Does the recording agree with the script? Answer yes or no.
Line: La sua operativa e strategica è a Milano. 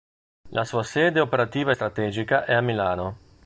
no